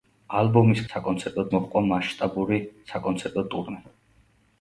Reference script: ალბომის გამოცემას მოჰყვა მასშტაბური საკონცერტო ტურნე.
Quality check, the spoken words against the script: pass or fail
fail